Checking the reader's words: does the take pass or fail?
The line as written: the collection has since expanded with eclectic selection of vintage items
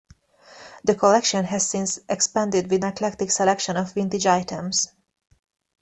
pass